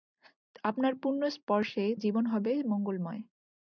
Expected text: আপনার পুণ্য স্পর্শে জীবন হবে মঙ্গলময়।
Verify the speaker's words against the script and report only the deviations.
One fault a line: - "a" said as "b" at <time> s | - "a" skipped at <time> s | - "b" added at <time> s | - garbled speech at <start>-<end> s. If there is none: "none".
none